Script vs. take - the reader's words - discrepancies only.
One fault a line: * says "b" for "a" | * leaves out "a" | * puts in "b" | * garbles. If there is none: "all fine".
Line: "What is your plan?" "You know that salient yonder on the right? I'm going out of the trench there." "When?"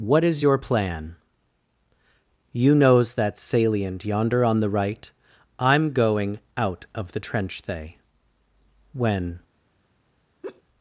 * says "knows" for "know"
* says "they" for "there"